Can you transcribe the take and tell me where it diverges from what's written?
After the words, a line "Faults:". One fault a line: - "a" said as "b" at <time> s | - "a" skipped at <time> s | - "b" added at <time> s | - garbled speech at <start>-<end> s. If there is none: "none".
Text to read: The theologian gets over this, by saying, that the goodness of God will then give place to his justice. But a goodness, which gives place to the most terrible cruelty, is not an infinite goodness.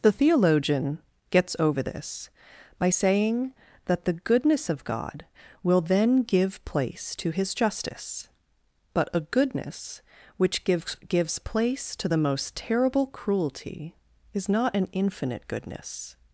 The theologian gets over this, by saying, that the goodness of God will then give place to his justice. But a goodness, which gives gives place to the most terrible cruelty, is not an infinite goodness.
Faults:
- "gives" added at 11.1 s